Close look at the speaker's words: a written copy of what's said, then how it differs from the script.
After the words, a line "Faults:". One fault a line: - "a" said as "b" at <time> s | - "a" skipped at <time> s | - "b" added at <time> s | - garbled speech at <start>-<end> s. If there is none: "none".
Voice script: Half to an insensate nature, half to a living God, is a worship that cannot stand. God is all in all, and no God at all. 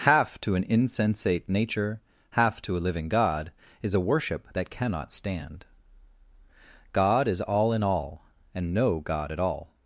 Half to an insensate nature, half to a living God, is a worship that cannot stand. God is all in all, and no God at all.
Faults:
none